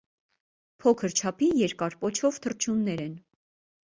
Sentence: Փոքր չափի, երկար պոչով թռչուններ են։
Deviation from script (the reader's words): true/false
false